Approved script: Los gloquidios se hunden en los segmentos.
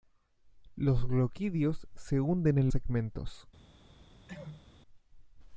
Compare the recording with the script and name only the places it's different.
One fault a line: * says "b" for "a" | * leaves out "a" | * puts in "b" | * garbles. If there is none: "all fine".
* leaves out "los"